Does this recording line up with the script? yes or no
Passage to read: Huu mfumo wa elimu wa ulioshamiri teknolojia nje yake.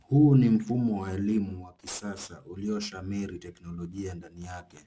no